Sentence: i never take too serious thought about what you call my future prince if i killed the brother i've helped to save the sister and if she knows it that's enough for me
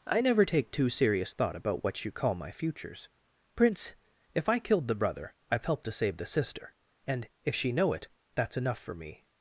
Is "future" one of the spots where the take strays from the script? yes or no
yes